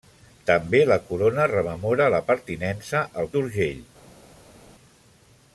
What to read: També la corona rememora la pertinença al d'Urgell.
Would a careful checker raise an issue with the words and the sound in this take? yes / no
no